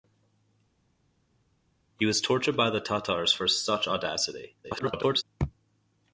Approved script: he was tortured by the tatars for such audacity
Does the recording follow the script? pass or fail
fail